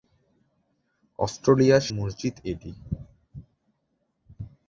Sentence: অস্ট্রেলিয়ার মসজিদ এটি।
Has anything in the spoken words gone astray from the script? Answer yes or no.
no